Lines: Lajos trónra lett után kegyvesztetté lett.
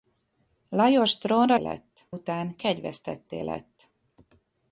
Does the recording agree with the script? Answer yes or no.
yes